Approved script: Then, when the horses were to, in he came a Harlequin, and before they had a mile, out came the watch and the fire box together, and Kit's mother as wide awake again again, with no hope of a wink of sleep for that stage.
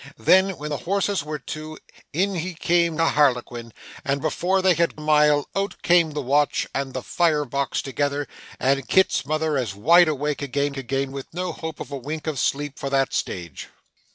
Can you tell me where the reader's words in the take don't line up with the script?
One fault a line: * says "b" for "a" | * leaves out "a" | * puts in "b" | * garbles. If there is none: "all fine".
all fine